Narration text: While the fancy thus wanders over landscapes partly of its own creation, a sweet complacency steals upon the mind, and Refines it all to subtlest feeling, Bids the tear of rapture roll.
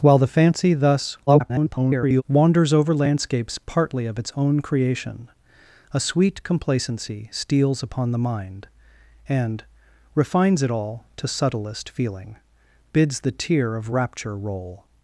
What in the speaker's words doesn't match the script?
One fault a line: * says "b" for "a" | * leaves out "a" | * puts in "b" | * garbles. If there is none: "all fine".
* garbles